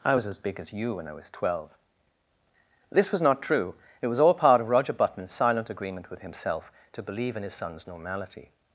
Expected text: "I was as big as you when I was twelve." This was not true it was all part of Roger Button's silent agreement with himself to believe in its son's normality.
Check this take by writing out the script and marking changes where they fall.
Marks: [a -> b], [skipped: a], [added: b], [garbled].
"I was as big as you when I was twelve." This was not true it was all part of Roger Button's silent agreement with himself to believe in [its -> his] son's normality.